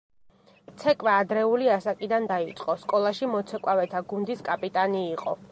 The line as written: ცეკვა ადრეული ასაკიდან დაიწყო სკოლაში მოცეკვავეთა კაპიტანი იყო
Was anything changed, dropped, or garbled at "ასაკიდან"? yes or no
no